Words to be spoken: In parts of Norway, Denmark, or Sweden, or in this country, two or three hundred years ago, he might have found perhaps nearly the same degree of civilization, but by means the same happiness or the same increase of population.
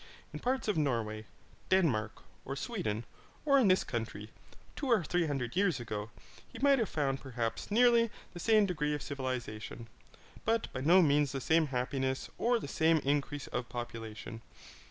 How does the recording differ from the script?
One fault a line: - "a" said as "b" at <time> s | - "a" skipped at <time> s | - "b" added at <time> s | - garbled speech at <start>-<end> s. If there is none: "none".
- "no" added at 10.8 s